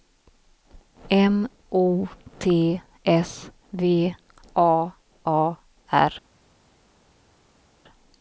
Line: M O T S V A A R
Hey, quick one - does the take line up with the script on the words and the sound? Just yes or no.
yes